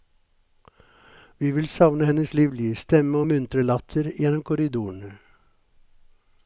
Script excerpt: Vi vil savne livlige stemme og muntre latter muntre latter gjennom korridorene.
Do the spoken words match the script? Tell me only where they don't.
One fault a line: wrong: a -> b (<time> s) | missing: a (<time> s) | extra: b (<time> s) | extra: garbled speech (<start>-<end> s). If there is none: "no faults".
extra: hennes (2.0 s)
missing: muntre latter (4.1 s)